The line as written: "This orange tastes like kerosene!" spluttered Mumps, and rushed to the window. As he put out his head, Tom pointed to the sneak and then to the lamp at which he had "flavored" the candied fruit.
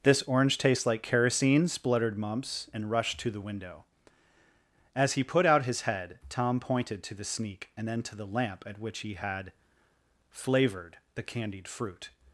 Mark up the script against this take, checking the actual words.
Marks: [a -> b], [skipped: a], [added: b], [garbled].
"This orange tastes like kerosene!" spluttered Mumps, and rushed to the window. As he put out his head, Tom pointed to the sneak and then to the lamp at which he had "flavored" the candied fruit.